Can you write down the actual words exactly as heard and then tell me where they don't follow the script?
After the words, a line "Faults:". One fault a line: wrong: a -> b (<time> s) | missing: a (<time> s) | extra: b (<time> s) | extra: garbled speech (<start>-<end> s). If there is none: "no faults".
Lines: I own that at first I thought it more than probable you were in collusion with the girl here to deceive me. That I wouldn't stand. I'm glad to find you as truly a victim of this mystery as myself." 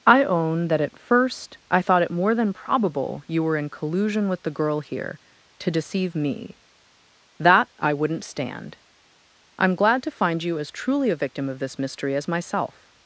I own that at first I thought it more than probable you were in collusion with the girl here to deceive me. That I wouldn't stand. I'm glad to find you as truly a victim of this mystery as myself."
Faults:
no faults